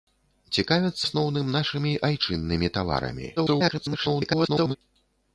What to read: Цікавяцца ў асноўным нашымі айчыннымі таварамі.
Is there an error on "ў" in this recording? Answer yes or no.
yes